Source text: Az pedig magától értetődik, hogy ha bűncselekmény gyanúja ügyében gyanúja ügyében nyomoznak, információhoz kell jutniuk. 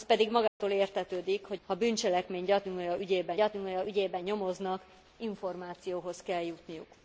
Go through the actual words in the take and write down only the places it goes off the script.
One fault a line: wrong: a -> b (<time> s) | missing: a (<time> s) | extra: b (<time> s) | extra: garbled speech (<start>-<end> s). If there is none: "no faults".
no faults